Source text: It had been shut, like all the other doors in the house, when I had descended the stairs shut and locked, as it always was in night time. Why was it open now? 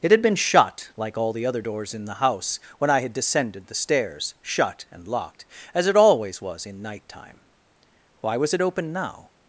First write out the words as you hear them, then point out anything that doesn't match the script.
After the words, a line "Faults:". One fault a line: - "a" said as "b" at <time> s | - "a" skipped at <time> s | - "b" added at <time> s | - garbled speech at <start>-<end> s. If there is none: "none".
It had been shut, like all the other doors in the house, when I had descended the stairs shut and locked, as it always was in night time. Why was it open now?
Faults:
none